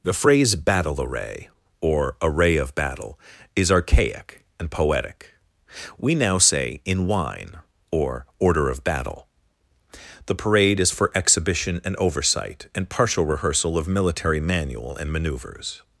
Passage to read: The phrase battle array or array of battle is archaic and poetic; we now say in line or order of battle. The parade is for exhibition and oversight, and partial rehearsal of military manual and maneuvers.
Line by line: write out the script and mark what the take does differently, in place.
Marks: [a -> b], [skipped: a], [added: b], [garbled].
The phrase battle array or array of battle is archaic and poetic; we now say in [line -> wine] or order of battle. The parade is for exhibition and oversight, and partial rehearsal of military manual and maneuvers.